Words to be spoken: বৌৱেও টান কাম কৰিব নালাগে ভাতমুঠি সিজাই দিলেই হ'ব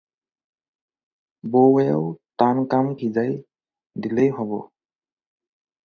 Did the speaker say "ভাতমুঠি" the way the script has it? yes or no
no